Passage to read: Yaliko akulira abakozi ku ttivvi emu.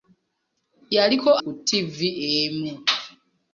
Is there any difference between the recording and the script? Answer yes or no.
yes